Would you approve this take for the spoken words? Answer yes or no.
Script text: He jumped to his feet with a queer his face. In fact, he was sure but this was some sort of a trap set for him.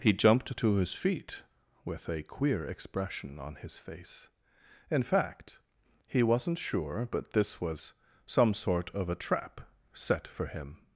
no